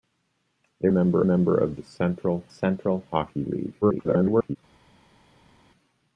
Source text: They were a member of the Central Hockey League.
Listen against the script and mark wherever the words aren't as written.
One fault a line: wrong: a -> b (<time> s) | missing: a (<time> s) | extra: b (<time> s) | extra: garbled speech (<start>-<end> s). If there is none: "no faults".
wrong: were -> member (0.9 s)
extra: Central (2.5 s)
extra: garbled speech (3.8-4.6 s)